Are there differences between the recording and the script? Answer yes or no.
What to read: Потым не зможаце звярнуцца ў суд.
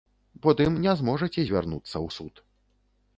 no